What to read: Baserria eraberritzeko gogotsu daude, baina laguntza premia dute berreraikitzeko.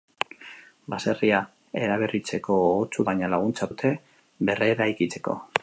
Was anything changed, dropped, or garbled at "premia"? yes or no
yes